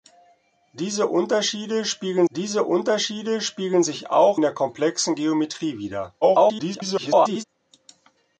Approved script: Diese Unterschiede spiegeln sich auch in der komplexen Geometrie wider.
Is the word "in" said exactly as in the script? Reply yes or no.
no